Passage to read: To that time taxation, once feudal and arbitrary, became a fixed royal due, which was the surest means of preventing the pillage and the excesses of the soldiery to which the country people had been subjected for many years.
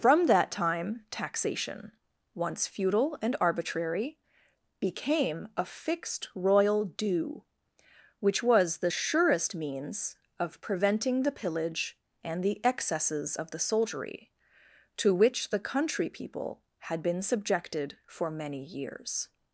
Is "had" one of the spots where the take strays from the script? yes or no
no